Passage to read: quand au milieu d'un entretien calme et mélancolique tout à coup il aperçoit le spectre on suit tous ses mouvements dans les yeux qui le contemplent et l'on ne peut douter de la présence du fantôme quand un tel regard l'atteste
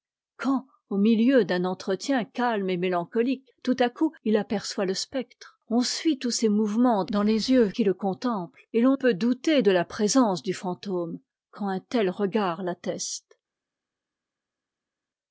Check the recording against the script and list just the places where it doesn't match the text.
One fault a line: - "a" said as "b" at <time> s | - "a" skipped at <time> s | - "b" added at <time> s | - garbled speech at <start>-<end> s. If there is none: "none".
- "ne" skipped at 9.0 s